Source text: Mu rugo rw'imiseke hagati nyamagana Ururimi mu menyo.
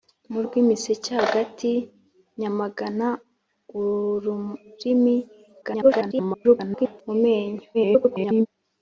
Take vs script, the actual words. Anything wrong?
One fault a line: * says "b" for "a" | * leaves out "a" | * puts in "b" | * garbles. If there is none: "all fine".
* leaves out "rugo"
* garbles
* garbles